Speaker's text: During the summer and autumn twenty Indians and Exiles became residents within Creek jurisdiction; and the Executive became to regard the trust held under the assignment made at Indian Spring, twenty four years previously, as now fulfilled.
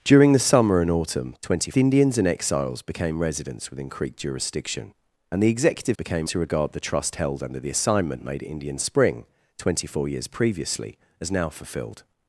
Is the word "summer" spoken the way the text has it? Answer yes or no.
yes